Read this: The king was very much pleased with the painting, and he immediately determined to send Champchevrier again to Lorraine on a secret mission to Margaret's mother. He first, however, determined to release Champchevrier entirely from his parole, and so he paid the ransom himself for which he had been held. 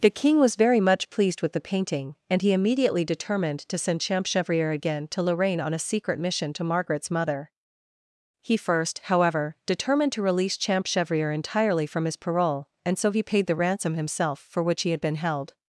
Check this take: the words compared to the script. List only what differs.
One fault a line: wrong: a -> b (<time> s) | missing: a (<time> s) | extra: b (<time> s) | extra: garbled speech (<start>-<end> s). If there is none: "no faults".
no faults